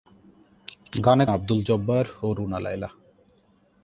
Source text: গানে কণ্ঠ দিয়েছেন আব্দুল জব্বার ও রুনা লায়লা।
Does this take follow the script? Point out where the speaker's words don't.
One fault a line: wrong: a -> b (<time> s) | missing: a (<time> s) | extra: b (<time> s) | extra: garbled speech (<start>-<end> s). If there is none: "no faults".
missing: কণ্ঠ দিয়েছেন (1.2 s)